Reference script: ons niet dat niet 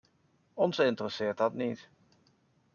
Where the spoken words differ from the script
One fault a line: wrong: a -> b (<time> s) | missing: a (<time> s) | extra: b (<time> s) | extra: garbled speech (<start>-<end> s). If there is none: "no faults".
wrong: niet -> interesseert (0.8 s)